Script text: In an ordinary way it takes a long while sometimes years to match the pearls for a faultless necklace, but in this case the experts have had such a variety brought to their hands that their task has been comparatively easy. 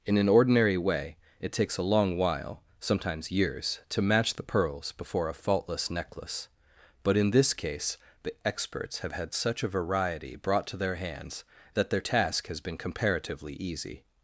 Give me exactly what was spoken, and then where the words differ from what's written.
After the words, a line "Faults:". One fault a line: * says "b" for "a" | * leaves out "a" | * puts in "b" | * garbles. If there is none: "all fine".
In an ordinary way it takes a long while sometimes years to match the pearls before a faultless necklace, but in this case the experts have had such a variety brought to their hands that their task has been comparatively easy.
Faults:
* says "before" for "for"